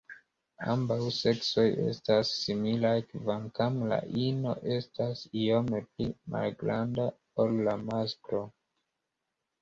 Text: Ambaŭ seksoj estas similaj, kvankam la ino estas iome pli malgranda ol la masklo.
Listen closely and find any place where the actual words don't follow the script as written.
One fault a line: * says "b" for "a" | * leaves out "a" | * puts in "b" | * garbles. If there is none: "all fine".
all fine